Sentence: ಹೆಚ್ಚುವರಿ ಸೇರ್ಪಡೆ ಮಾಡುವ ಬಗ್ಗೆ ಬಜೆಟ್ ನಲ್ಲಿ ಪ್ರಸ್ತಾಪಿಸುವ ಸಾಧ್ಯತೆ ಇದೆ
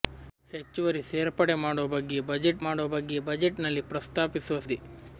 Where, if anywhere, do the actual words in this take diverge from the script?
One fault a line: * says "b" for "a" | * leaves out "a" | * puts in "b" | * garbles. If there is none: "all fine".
* puts in "ಮಾಡುವ ಬಗ್ಗೆ ಬಜೆಟ್"
* leaves out "ಸಾಧ್ಯತೆ"